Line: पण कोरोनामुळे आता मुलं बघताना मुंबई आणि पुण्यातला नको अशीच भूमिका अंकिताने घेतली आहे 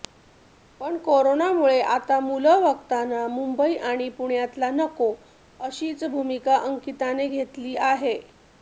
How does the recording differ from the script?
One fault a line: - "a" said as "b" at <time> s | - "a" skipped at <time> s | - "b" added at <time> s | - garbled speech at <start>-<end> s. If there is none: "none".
none